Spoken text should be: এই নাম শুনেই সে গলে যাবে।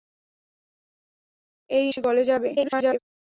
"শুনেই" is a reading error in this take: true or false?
true